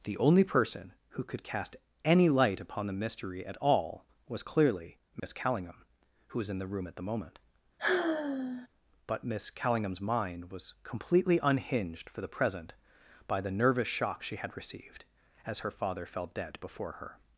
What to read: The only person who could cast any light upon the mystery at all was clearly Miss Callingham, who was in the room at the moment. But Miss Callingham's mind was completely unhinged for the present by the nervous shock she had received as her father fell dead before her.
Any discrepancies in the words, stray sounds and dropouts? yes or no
yes